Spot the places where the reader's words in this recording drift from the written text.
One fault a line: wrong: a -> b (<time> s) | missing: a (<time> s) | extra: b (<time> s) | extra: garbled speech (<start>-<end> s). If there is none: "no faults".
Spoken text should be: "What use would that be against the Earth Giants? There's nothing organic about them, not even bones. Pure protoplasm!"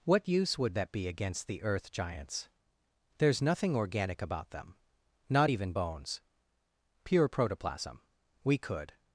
extra: We could (8.4 s)